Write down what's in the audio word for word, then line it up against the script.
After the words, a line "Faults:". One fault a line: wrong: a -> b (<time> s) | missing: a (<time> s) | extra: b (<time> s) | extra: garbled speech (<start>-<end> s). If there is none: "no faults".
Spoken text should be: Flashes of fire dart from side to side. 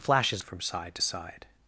Flashes from side to side.
Faults:
missing: of fire dart (0.4 s)